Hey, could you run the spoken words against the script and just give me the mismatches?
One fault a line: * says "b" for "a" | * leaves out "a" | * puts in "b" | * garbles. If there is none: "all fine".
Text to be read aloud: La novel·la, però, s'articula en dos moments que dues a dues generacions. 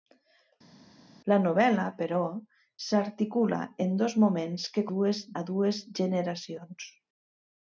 all fine